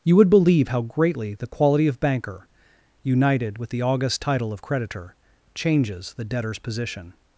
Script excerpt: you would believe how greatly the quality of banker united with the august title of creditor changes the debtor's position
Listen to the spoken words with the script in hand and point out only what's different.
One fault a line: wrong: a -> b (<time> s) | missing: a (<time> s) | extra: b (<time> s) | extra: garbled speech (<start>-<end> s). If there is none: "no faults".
no faults